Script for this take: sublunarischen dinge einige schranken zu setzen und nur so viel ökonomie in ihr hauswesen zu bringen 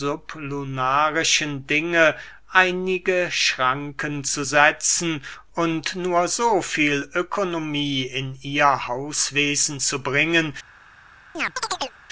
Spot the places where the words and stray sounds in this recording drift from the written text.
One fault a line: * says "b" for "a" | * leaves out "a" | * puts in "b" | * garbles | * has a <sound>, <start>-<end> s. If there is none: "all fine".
* has a chirp, 11.3-12.0 s